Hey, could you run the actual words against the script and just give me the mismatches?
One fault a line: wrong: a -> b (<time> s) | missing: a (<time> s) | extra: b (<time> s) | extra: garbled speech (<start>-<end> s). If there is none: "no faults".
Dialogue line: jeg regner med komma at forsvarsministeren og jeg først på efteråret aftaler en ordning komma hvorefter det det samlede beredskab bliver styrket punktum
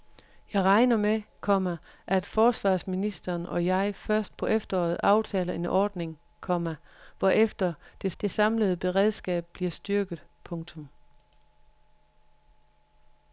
no faults